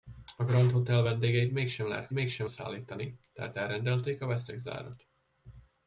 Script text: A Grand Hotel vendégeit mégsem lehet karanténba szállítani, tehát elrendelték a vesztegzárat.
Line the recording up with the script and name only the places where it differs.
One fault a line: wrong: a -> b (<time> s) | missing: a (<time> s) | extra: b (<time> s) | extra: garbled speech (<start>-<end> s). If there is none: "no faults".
wrong: karanténba -> mégsem (2.1 s)